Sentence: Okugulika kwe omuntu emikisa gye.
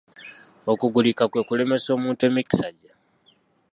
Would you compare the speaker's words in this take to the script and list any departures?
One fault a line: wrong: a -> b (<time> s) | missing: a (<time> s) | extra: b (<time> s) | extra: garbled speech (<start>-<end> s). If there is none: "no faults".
extra: kulemesa (1.5 s)